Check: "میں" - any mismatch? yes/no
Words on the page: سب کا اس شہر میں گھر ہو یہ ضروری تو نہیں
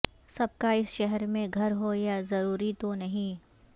no